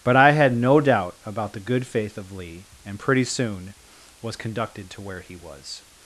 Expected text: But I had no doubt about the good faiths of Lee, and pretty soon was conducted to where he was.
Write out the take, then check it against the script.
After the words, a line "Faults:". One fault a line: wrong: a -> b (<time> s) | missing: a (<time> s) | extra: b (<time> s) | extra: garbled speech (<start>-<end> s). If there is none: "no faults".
But I had no doubt about the good faith of Lee, and pretty soon was conducted to where he was.
Faults:
wrong: faiths -> faith (1.9 s)